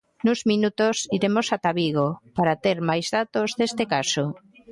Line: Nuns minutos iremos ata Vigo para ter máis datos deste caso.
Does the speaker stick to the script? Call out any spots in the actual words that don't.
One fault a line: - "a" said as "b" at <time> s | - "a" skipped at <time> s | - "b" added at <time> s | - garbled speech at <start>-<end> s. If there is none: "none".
none